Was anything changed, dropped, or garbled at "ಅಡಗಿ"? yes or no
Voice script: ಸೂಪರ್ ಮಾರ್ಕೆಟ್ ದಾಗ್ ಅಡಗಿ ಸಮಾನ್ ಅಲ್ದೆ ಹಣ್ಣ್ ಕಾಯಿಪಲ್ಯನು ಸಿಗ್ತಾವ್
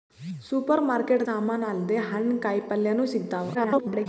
yes